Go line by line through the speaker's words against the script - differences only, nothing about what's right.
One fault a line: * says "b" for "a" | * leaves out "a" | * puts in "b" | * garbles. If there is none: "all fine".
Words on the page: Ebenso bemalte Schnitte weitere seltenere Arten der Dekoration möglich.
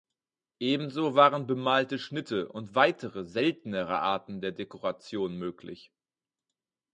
* puts in "waren"
* puts in "und"